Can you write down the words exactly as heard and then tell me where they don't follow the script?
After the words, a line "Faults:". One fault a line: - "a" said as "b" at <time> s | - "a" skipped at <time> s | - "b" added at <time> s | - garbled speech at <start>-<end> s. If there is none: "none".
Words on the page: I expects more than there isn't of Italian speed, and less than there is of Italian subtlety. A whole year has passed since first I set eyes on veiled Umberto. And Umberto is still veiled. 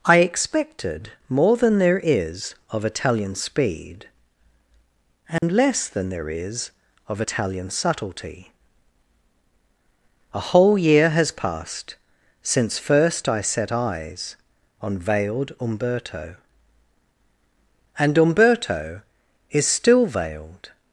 I expected more than there is of Italian speed, and less than there is of Italian subtlety. A whole year has passed since first I set eyes on veiled Umberto. And Umberto is still veiled.
Faults:
- "expects" said as "expected" at 0.2 s
- "isn't" said as "is" at 2.0 s